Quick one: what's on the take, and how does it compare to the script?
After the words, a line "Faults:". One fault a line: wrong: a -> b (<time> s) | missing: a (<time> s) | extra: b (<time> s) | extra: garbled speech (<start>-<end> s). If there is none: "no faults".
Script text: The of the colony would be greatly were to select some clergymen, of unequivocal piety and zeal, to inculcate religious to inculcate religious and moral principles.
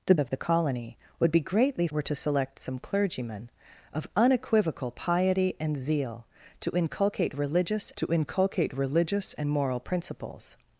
The of the colony would be greatly were to select some clergymen, of unequivocal piety and zeal, to inculcate religious to inculcate religious and moral principles.
Faults:
no faults